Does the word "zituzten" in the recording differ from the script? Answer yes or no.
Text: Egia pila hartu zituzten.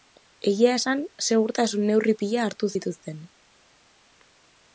no